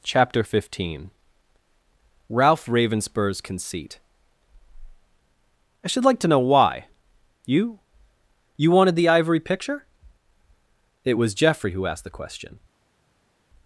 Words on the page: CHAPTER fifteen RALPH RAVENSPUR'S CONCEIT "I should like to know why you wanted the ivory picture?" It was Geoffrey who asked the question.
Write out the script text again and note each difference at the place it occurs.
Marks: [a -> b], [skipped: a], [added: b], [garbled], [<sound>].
CHAPTER fifteen RALPH RAVENSPUR'S CONCEIT "I should like to know why you [added: you] wanted the ivory picture?" It was Geoffrey who asked the question.